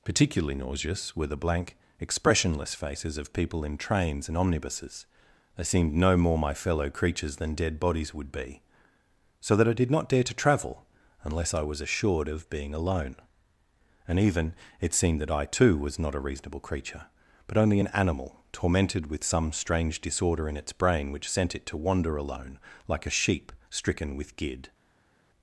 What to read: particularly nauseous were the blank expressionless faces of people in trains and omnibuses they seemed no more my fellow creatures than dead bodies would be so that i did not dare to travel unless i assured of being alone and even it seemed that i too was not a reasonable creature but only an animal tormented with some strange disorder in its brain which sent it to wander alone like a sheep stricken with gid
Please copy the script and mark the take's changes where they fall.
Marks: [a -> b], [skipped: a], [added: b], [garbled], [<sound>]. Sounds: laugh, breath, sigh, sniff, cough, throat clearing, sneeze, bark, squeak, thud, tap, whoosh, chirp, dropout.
particularly nauseous were the blank expressionless faces of people in trains and omnibuses they seemed no more my fellow creatures than dead bodies would be so that i did not dare to travel unless i [added: was] assured of being alone and even it seemed that i too was not a reasonable creature but only an animal tormented with some strange disorder in its brain which sent it to wander alone like a sheep stricken with gid